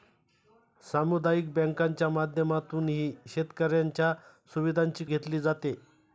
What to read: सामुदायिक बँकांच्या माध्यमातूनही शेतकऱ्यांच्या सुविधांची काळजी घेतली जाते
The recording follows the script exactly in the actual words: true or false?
false